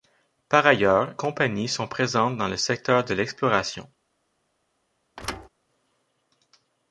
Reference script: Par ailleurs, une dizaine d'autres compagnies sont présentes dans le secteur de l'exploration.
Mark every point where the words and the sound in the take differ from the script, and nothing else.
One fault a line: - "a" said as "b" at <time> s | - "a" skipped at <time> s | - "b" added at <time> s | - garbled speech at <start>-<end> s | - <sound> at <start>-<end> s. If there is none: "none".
- "une dizaine d'autres" skipped at 1.1 s
- thud at 5.2-5.5 s